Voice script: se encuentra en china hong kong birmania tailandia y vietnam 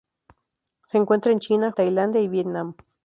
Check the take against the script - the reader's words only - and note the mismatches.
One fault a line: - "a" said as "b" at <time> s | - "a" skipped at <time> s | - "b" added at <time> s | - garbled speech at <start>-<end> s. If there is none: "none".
- "hong kong birmania" skipped at 1.7 s